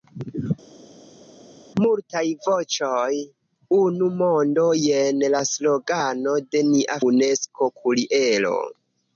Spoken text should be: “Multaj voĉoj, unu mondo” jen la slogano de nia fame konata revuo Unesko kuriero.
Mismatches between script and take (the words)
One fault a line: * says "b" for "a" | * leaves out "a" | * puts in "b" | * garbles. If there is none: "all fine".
* leaves out "fame konata revuo"